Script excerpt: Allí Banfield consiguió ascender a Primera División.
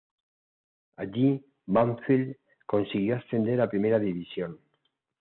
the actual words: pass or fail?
pass